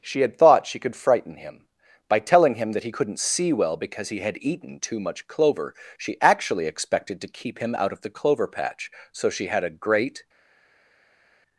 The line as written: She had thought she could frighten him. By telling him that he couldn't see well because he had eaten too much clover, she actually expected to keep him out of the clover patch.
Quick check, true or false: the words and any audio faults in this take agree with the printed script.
false